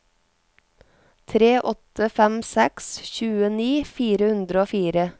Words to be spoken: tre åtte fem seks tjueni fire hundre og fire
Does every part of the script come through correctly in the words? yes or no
yes